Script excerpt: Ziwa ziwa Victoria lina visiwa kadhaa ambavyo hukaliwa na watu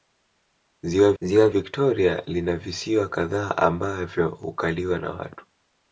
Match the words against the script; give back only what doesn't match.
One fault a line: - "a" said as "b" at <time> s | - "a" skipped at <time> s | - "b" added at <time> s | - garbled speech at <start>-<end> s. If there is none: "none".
none